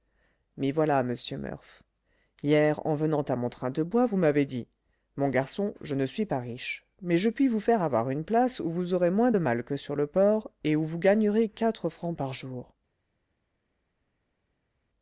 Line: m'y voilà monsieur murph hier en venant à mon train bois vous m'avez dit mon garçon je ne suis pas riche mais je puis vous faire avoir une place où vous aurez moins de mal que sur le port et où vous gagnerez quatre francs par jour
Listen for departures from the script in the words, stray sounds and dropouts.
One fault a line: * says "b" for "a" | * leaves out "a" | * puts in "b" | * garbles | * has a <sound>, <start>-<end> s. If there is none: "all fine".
* puts in "de"